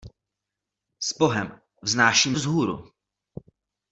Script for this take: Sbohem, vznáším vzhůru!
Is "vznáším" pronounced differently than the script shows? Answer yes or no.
no